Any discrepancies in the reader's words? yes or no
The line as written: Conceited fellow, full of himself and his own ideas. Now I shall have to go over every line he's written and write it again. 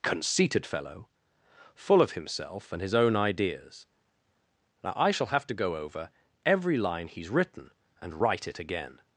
no